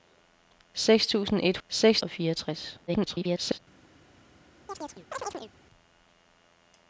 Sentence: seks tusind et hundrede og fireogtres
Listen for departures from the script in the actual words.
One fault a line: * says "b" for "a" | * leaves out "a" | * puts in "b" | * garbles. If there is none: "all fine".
* says "seks" for "hundrede"
* garbles